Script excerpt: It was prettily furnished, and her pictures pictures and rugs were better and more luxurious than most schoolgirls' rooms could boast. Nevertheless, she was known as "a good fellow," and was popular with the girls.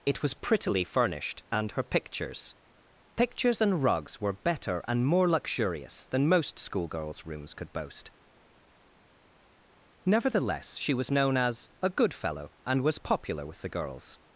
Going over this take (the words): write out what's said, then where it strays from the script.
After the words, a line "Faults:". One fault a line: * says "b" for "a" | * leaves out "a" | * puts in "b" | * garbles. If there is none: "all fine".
It was prettily furnished, and her pictures pictures and rugs were better and more luxurious than most schoolgirls' rooms could boast. Nevertheless, she was known as "a good fellow," and was popular with the girls.
Faults:
all fine